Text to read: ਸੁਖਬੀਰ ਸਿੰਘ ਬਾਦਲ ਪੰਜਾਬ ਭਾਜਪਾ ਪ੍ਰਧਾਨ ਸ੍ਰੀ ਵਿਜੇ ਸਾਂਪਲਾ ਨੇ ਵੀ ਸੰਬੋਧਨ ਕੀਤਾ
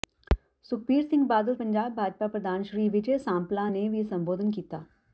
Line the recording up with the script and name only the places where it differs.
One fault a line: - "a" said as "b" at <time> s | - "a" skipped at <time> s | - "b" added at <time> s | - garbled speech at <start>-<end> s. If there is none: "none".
none